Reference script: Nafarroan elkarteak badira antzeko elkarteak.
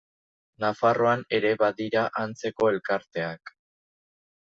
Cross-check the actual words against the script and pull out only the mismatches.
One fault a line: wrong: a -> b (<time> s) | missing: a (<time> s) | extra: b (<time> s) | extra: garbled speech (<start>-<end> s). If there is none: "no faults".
wrong: elkarteak -> ere (1.4 s)